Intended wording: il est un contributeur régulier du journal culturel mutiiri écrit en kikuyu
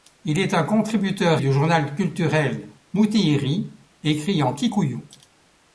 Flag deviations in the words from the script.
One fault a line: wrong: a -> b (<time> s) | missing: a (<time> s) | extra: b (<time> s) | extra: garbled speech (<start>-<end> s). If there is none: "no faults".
missing: régulier (1.4 s)